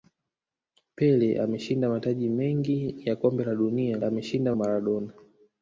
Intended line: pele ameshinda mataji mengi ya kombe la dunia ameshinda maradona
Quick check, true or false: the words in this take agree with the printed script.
true